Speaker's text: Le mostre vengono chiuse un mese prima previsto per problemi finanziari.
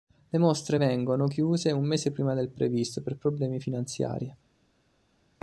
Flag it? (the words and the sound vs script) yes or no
yes